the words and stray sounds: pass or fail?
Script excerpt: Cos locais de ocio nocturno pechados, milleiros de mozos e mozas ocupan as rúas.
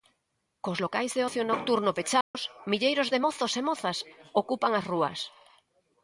fail